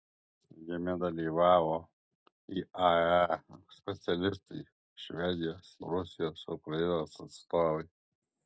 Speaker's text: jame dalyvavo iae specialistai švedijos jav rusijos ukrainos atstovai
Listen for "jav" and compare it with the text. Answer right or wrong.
wrong